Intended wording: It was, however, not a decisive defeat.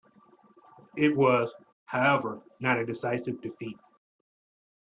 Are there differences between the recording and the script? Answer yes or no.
no